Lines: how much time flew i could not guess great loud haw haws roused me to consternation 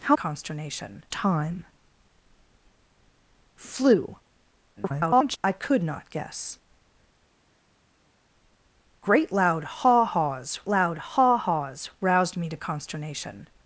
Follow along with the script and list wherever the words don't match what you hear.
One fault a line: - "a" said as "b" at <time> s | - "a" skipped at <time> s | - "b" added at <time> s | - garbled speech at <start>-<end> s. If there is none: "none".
- "much" said as "consternation" at 0.1 s
- garbled speech at 4.8-5.4 s
- "loud haw haws" added at 10.7 s